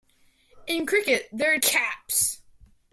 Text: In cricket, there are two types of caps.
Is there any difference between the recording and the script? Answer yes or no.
yes